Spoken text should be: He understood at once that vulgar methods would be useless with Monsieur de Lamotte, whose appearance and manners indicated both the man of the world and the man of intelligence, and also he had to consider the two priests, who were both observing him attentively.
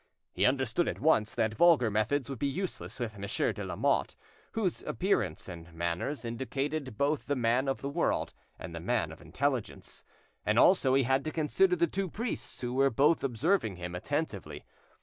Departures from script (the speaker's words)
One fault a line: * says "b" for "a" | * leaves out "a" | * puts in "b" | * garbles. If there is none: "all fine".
all fine